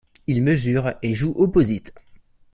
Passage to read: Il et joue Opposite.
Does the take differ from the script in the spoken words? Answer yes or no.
yes